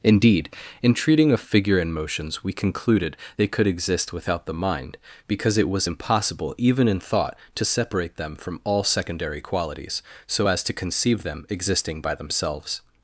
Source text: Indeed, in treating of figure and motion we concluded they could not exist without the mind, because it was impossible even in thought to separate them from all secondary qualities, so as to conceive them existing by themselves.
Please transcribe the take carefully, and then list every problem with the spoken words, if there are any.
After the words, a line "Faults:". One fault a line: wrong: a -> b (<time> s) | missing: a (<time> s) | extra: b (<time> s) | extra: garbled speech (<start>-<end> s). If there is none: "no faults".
Indeed, in treating of figure and motions we concluded they could exist without the mind, because it was impossible even in thought to separate them from all secondary qualities, so as to conceive them existing by themselves.
Faults:
wrong: motion -> motions (1.9 s)
missing: not (3.7 s)